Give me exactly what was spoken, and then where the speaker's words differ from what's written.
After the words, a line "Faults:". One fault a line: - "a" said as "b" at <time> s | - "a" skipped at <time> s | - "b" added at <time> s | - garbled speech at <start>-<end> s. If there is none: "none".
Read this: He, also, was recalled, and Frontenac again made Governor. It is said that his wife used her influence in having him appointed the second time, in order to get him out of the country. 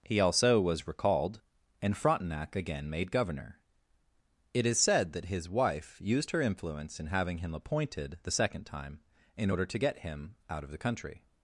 He, also, was recalled, and Frontenac again made Governor. It is said that his wife used her influence in having him appointed the second time, in order to get him out of the country.
Faults:
none